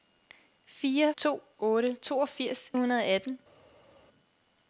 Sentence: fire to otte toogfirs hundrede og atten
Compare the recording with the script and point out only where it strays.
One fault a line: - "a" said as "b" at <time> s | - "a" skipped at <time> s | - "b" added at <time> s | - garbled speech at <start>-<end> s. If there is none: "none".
none